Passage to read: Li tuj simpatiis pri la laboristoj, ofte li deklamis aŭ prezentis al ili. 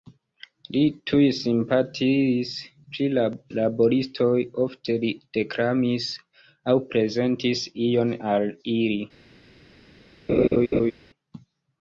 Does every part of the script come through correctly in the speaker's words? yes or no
no